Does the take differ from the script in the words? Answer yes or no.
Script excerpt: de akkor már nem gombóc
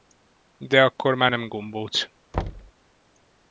no